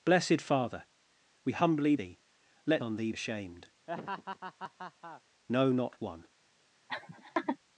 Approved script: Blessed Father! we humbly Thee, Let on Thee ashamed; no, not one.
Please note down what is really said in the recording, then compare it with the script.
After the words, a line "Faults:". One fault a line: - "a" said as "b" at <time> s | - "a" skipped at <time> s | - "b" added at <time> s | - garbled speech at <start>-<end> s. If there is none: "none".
Blessed Father! we humbly Thee, Let on Thee ashamed; no, not one.
Faults:
none